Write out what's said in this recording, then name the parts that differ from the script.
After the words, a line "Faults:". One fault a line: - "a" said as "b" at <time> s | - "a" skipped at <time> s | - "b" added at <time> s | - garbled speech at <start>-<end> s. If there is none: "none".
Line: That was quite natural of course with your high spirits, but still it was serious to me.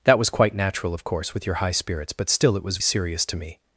That was quite natural of course with your high spirits, but still it was serious to me.
Faults:
none